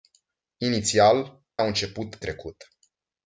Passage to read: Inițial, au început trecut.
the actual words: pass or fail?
pass